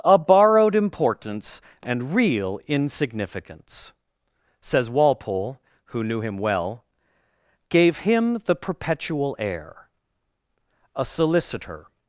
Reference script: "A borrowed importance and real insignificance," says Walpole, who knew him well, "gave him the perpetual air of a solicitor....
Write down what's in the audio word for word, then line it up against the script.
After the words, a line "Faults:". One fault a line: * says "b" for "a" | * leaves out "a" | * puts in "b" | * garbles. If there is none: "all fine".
"A borrowed importance and real insignificance," says Walpole, who knew him well, "gave him the perpetual air a solicitor....
Faults:
* leaves out "of"